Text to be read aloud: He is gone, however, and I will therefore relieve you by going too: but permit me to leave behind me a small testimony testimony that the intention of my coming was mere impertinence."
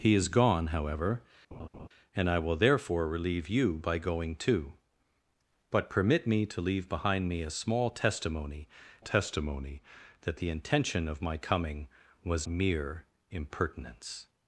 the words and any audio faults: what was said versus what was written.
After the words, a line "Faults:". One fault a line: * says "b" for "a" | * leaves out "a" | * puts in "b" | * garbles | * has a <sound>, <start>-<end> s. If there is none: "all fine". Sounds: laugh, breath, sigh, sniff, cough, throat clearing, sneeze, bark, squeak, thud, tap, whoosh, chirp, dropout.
He is gone, however, and I will therefore relieve you by going too: but permit me to leave behind me a small testimony testimony that the intention of my coming was mere impertinence."
Faults:
* has a laugh, 1.5-1.9 s